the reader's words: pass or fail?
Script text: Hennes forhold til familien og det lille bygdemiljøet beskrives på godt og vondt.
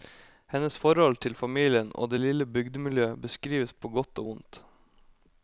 pass